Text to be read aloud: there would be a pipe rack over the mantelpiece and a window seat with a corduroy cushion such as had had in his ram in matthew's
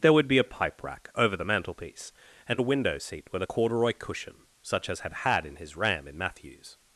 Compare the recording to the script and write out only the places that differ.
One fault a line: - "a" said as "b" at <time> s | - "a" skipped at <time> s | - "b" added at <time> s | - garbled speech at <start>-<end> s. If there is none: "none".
none